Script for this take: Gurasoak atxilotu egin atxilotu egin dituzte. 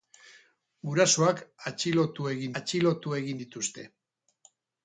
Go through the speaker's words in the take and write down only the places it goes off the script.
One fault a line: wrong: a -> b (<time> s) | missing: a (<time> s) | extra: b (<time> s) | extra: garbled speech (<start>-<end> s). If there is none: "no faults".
no faults